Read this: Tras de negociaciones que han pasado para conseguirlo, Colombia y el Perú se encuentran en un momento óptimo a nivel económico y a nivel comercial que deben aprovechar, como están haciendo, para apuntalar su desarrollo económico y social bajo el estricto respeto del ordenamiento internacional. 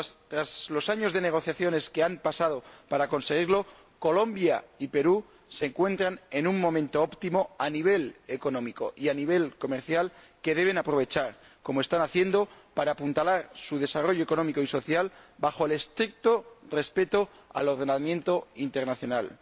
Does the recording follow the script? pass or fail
fail